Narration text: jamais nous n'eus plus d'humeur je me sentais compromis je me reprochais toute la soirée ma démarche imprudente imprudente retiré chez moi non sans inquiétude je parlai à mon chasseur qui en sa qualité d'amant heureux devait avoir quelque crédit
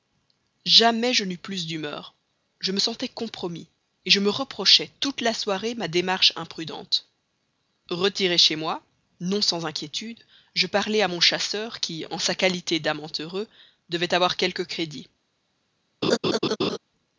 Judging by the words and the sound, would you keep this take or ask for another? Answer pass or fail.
fail